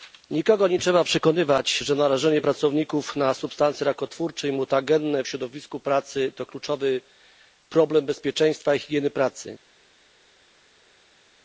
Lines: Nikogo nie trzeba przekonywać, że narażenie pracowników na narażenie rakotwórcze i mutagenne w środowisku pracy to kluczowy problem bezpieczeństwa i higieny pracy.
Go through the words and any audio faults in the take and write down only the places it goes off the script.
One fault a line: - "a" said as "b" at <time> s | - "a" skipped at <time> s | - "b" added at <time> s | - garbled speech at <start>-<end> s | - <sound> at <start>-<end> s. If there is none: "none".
- "narażenie" said as "substancje" at 3.3 s